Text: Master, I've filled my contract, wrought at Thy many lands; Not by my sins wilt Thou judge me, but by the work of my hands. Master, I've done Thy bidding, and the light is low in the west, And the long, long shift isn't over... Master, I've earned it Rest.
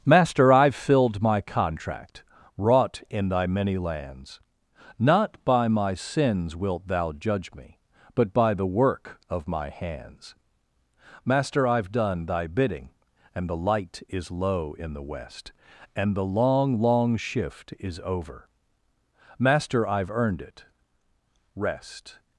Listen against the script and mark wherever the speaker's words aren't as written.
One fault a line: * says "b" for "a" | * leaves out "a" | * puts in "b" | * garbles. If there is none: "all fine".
* says "in" for "at"
* says "is" for "isn't"